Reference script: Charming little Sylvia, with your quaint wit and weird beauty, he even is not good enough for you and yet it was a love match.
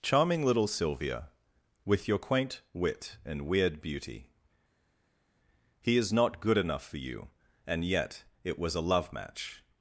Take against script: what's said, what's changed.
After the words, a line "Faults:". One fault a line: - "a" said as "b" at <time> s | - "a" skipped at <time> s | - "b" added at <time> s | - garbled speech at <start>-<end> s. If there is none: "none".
Charming little Sylvia, with your quaint wit and weird beauty, he is not good enough for you and yet it was a love match.
Faults:
- "even" skipped at 6.0 s